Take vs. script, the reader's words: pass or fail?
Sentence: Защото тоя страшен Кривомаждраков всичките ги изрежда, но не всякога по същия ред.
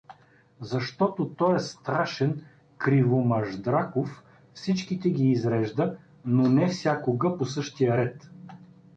pass